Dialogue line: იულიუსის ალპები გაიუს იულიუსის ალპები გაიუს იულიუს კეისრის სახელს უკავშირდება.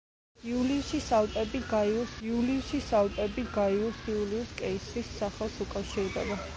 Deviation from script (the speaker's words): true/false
false